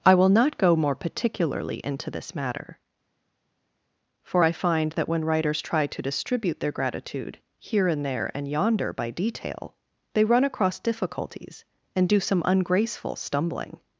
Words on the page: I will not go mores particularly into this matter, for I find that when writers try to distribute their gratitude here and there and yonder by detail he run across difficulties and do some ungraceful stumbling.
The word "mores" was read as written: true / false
false